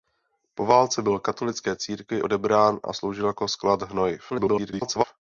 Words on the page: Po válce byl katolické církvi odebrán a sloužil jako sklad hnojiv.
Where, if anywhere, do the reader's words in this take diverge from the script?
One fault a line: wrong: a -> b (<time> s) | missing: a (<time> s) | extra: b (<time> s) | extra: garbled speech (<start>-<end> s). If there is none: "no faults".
extra: garbled speech (4.3-5.0 s)